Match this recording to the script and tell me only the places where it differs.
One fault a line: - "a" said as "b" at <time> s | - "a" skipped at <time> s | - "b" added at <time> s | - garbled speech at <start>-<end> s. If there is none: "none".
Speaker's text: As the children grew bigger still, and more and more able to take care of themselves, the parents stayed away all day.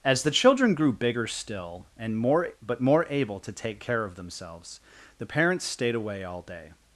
- "and" said as "but" at 2.6 s